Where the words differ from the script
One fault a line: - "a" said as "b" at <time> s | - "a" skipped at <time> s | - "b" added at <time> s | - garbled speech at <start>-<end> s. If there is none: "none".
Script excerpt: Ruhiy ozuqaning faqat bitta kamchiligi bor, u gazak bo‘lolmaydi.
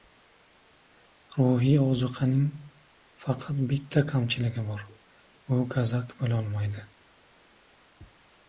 none